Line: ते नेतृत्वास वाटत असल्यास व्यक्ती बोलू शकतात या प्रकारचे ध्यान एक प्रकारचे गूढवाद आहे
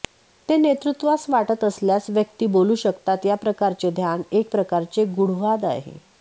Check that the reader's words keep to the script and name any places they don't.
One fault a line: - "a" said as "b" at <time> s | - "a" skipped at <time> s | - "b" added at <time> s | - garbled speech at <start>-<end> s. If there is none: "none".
none